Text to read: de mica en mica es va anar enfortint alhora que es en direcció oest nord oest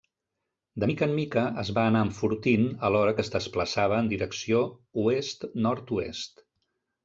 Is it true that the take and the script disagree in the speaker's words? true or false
true